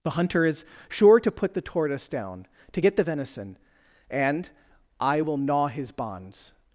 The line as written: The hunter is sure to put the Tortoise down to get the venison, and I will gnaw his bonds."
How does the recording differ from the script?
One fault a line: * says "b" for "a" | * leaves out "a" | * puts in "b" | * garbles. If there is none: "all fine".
all fine